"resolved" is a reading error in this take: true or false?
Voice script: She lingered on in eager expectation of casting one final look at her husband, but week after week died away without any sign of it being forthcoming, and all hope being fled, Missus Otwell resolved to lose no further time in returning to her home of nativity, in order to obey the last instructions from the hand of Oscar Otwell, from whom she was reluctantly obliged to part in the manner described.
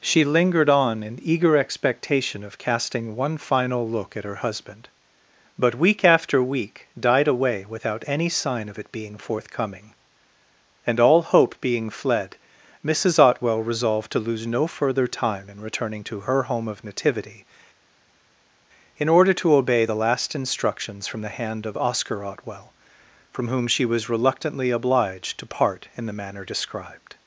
false